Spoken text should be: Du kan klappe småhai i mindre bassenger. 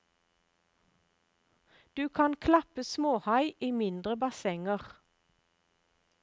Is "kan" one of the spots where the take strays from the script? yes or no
no